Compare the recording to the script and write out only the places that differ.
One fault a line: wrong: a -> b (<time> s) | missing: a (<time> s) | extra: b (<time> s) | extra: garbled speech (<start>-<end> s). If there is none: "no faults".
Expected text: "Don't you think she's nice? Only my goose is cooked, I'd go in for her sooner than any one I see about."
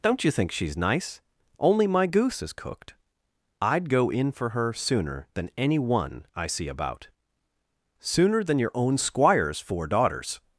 extra: Sooner than your own squire's four daughters (8.0 s)